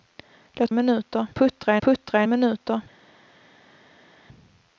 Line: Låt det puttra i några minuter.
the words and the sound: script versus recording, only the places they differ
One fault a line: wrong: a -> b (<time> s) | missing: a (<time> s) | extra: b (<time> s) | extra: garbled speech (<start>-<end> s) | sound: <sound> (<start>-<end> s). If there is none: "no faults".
wrong: det -> minuter (0.7 s)
wrong: några -> puttra (1.8 s)